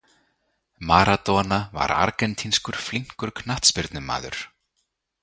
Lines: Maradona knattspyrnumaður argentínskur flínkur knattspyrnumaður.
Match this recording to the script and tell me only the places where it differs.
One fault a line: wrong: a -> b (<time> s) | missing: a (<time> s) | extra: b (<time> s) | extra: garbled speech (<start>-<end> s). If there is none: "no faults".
wrong: knattspyrnumaður -> var (1.8 s)